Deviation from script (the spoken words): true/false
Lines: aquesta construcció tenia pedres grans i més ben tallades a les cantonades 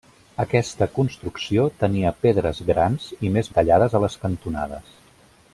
true